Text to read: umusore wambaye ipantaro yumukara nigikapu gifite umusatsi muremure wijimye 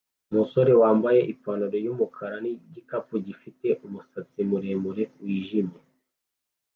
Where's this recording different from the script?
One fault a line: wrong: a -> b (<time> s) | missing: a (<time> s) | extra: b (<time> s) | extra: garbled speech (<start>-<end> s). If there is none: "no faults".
no faults